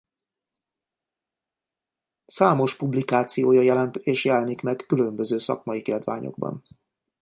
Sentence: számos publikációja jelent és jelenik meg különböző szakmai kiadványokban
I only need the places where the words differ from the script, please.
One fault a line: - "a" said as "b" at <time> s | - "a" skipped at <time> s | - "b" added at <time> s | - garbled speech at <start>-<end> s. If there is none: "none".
none